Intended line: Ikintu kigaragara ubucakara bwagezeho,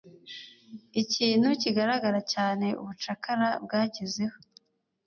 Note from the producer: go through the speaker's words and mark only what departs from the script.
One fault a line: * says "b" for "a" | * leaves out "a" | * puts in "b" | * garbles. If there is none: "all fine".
* puts in "cyane"